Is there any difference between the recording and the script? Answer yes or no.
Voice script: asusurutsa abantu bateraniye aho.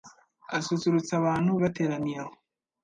no